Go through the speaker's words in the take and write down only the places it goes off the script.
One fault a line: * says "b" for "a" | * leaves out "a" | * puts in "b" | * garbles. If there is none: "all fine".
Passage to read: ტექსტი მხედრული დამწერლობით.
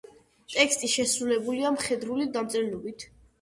* puts in "შესრულებულია"